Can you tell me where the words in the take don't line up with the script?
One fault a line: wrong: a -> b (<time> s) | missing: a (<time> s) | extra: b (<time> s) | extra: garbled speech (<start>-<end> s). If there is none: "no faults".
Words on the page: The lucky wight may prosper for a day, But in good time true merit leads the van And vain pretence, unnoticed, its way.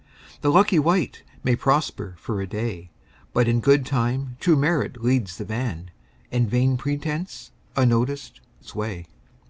no faults